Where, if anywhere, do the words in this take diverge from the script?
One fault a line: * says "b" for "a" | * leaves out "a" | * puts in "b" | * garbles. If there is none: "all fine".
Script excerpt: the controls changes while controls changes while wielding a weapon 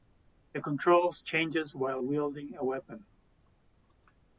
* leaves out "controls changes while"